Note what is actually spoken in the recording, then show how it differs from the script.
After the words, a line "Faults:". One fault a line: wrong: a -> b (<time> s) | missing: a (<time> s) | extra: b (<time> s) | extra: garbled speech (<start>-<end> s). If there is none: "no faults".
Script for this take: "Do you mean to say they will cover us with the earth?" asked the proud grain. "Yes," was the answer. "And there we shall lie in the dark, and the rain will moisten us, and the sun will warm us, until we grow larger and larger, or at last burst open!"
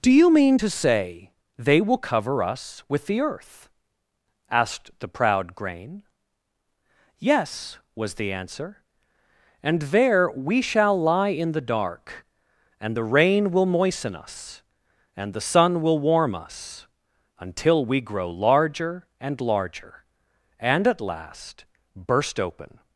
"Do you mean to say they will cover us with the earth?" asked the proud grain. "Yes," was the answer. "And there we shall lie in the dark, and the rain will moisten us, and the sun will warm us, until we grow larger and larger, and at last burst open!"
Faults:
wrong: or -> and (20.6 s)